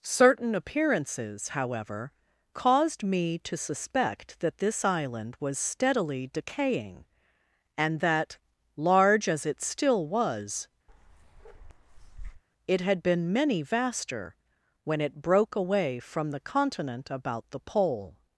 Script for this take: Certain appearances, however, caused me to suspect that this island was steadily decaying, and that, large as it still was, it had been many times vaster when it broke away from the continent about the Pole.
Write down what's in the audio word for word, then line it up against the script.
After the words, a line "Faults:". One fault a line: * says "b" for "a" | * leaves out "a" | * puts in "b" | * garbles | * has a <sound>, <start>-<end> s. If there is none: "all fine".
Certain appearances, however, caused me to suspect that this island was steadily decaying, and that, large as it still was, it had been many vaster when it broke away from the continent about the Pole.
Faults:
* has a bark, 10.9-12.4 s
* leaves out "times"